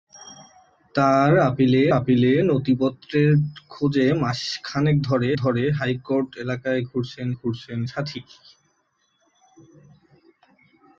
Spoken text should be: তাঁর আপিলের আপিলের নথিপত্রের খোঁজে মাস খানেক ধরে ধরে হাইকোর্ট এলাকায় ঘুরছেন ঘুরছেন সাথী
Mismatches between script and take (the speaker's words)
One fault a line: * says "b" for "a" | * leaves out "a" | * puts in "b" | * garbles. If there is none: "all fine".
all fine